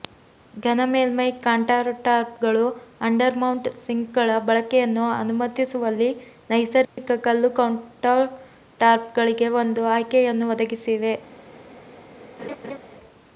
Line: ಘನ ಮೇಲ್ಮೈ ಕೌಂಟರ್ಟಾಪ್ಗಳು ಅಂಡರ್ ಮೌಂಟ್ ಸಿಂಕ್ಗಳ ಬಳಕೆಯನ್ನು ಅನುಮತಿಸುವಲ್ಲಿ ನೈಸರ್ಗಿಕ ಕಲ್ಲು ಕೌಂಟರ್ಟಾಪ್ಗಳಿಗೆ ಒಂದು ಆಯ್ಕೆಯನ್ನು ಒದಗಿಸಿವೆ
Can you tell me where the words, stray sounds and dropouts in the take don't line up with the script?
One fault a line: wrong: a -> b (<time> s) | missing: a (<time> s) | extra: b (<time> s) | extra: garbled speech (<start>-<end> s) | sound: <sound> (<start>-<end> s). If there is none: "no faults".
sound: dropout (6.8-7.0 s)
sound: laugh (12.4-12.8 s)